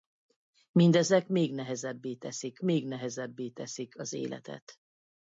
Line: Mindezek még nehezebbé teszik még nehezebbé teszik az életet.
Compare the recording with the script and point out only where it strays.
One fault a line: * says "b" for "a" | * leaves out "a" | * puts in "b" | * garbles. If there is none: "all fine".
all fine